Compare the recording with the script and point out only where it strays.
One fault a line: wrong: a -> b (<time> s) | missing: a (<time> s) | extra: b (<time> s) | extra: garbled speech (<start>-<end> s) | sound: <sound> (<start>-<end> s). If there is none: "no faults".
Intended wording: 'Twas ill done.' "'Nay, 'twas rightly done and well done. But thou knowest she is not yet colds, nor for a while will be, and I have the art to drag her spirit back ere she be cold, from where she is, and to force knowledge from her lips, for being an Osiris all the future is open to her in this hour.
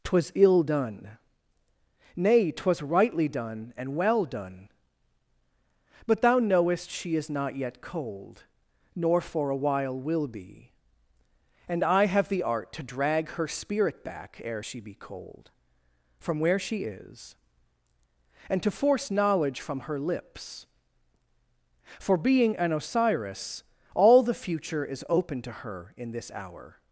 wrong: colds -> cold (7.8 s)